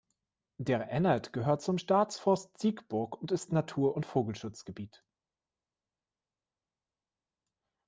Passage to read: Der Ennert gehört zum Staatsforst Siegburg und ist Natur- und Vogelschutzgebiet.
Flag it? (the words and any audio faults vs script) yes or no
no